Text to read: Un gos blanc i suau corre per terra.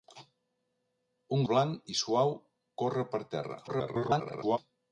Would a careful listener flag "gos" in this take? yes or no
yes